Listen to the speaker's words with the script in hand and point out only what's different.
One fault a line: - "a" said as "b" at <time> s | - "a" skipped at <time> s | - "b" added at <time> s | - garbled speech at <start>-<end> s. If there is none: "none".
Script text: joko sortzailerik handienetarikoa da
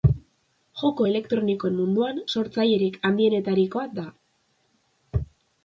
- "elektronikoen munduan" added at 1.1 s